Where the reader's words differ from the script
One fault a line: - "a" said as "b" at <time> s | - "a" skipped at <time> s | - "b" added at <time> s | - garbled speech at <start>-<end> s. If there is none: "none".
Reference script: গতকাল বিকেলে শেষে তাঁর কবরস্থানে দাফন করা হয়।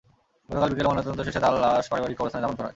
- "ময়নাতদন্ত" added at 0.9 s
- "লাশ পারিবারিক" added at 1.6 s